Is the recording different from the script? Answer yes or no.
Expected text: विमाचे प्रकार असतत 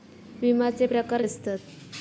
no